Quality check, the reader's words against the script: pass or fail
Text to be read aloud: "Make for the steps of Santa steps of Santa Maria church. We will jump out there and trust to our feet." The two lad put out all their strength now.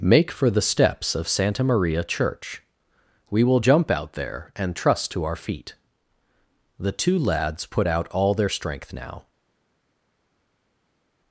fail